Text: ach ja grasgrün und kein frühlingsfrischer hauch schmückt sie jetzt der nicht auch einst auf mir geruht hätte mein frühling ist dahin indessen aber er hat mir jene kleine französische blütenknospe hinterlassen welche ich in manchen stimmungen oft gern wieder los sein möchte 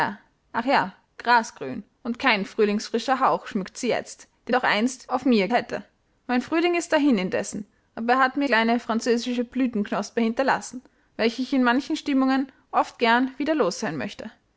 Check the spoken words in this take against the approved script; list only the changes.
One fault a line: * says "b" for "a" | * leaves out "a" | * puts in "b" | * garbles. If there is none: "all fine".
* leaves out "nicht"
* leaves out "geruht"
* leaves out "jene"